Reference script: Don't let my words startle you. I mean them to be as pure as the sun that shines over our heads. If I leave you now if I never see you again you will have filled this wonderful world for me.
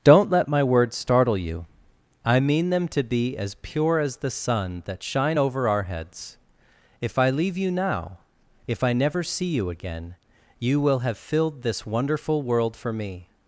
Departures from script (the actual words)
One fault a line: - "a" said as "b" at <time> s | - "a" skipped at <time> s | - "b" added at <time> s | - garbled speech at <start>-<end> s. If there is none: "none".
- "shines" said as "shine" at 5.0 s